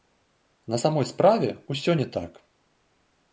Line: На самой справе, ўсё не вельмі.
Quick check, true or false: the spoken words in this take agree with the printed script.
false